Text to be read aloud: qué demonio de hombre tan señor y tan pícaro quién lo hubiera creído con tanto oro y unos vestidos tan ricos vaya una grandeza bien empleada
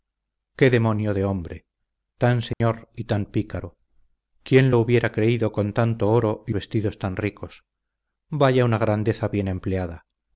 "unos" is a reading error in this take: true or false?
true